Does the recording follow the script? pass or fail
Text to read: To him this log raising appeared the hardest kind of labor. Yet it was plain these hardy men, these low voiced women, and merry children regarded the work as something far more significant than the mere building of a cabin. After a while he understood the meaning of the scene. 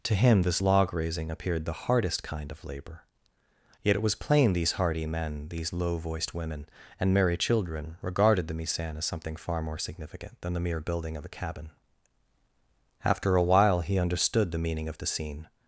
fail